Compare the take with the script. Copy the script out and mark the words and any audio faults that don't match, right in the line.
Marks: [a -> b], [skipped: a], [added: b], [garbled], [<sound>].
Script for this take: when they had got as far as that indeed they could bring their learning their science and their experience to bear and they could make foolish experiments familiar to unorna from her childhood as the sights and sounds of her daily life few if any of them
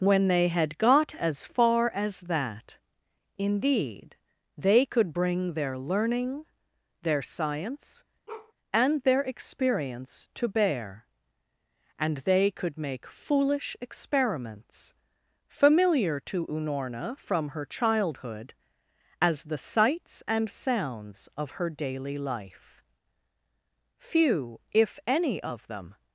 when they had got as far as that indeed they could bring their learning their science [bark] and their experience to bear and they could make foolish experiments familiar to unorna from her childhood as the sights and sounds of her daily life few if any of them